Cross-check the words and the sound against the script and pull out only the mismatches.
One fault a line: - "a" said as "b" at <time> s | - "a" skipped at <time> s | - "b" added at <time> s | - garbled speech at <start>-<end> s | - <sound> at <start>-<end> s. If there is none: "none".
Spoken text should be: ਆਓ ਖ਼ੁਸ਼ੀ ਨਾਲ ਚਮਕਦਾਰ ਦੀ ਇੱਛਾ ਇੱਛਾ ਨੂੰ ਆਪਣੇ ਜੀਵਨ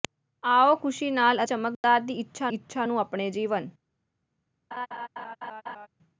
- dropout at 1.7-1.8 s
- laugh at 4.7-5.9 s